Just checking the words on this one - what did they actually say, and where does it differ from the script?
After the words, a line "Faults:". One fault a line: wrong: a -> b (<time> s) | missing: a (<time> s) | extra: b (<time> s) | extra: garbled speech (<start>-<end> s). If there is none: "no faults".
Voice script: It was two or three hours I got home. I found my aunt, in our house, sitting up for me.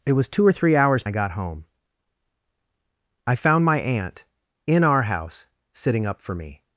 It was two or three hours I got home. I found my aunt, in our house, sitting up for me.
Faults:
no faults